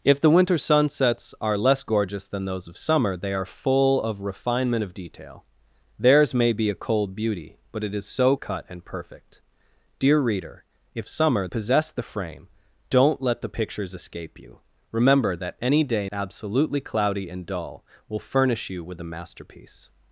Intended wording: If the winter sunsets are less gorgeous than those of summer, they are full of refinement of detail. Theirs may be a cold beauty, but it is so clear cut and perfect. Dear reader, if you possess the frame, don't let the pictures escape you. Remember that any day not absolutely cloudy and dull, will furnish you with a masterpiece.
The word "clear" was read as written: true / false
false